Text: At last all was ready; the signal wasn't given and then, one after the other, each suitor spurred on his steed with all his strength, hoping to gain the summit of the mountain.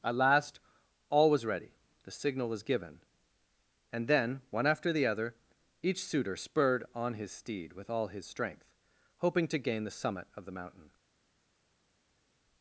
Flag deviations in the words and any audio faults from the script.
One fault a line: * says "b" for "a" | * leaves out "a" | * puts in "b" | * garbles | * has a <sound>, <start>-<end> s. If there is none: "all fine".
* says "was" for "wasn't"